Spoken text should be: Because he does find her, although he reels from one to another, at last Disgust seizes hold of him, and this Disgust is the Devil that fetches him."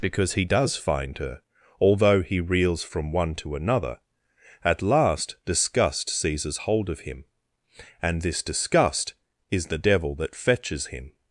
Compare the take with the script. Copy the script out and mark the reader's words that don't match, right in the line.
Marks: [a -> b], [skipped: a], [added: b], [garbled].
Because he does find her, although he reels from one to another, at last Disgust seizes hold of him, and this Disgust is the Devil that fetches him."